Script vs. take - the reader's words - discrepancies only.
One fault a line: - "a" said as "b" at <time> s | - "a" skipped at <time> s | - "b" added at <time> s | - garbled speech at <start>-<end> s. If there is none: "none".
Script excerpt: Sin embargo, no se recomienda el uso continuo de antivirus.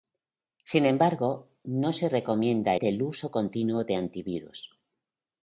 none